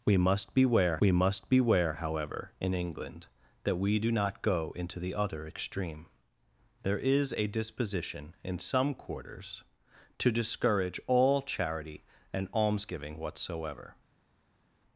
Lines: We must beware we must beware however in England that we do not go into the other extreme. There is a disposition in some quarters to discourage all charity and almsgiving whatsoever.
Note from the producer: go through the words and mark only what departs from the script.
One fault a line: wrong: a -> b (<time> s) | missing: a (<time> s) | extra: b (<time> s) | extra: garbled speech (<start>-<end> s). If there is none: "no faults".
no faults